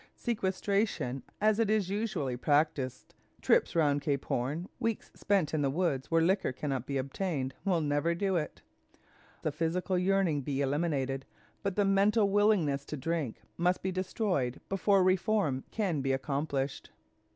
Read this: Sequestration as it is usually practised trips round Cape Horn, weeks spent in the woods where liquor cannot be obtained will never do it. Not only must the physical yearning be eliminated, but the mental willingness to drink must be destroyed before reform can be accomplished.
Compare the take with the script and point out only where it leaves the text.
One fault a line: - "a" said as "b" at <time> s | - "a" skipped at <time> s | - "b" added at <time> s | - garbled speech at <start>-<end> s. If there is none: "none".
- "Not only must" skipped at 8.6 s